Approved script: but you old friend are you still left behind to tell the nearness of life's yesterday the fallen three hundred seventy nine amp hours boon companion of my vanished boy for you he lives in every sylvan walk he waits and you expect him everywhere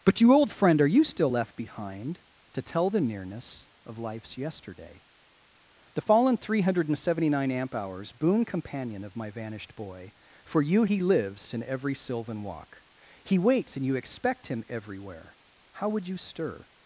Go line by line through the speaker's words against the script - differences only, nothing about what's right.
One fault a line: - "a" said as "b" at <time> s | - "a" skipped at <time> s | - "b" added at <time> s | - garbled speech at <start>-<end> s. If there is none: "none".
- "how would you stir" added at 15.7 s